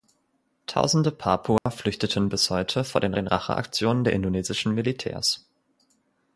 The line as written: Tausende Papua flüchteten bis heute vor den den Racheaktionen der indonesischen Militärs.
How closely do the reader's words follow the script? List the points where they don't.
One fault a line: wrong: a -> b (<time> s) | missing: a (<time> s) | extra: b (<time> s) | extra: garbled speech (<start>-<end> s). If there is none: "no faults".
no faults